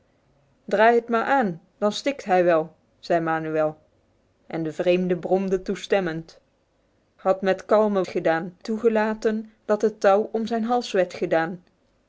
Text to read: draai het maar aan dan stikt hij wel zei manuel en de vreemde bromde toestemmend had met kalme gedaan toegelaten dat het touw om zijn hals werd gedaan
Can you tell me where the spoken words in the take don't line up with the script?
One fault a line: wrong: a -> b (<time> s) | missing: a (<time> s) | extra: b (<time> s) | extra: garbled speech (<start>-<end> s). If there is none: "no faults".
no faults